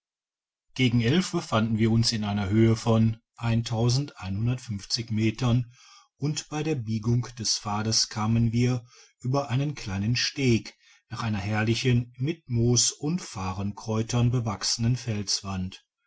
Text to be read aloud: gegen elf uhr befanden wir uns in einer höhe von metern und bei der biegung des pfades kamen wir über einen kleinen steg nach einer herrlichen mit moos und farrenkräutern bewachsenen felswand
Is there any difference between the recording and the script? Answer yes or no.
yes